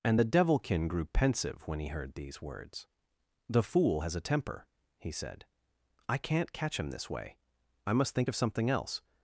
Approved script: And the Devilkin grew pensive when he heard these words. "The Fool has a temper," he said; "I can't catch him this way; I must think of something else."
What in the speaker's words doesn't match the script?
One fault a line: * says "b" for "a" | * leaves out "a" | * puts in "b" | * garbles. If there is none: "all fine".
all fine